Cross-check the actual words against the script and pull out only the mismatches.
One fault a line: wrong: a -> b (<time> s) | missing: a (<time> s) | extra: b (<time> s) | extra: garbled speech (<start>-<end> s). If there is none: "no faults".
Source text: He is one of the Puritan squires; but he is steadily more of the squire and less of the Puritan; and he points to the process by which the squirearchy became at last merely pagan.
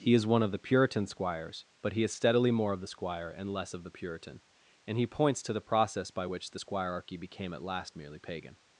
no faults